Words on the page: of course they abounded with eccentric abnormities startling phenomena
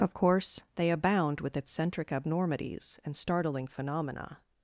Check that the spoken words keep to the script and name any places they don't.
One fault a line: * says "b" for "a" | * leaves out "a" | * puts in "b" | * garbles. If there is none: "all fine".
* says "abound" for "abounded"
* puts in "and"